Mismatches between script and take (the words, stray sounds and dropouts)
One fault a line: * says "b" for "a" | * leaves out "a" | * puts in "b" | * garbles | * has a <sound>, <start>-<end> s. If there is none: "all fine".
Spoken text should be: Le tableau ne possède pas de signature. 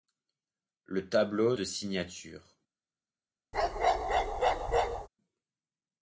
* leaves out "ne possède pas"
* has a bark, 3.5-5.1 s